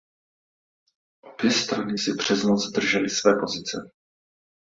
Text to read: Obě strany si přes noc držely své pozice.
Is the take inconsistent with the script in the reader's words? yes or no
no